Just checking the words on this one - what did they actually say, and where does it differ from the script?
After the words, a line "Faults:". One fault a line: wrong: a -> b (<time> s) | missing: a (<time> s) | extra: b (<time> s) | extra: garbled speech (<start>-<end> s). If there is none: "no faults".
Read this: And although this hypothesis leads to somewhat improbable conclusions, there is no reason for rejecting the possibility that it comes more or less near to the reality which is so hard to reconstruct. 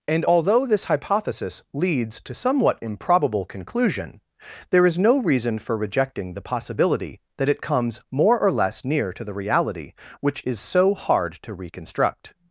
And although this hypothesis leads to somewhat improbable conclusion, there is no reason for rejecting the possibility that it comes more or less near to the reality which is so hard to reconstruct.
Faults:
wrong: conclusions -> conclusion (3.4 s)